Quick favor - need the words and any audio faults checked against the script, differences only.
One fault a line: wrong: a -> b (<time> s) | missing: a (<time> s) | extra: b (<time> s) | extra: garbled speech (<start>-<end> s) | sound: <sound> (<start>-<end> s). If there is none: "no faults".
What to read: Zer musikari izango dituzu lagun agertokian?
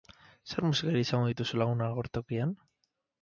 no faults